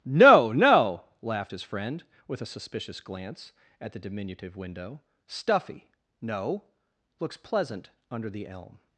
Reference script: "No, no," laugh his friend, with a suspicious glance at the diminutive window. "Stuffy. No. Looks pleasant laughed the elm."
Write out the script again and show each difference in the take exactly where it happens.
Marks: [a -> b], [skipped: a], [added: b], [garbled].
"No, no," [laugh -> laughed] his friend, with a suspicious glance at the diminutive window. "Stuffy. No. Looks pleasant [laughed -> under] the elm."